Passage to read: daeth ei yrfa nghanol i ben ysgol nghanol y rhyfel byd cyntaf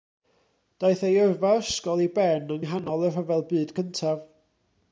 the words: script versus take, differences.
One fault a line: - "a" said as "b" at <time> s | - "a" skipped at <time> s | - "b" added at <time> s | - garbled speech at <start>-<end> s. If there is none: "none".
- "nghanol" said as "ysgol" at 1.6 s
- "ysgol" said as "yng" at 2.5 s